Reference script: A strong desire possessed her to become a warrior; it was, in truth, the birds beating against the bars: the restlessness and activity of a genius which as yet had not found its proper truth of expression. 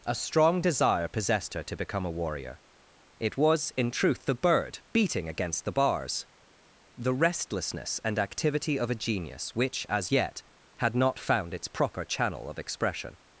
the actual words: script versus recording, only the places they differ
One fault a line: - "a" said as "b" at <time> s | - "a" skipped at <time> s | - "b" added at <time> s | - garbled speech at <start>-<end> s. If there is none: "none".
- "birds" said as "bird" at 4.3 s
- "truth" said as "channel" at 12.0 s